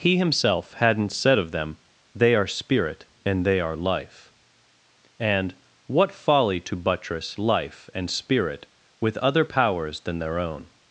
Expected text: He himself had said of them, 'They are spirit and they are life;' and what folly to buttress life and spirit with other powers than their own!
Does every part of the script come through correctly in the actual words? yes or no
no